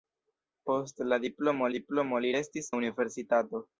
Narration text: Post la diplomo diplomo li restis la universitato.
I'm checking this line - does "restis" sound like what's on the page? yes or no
yes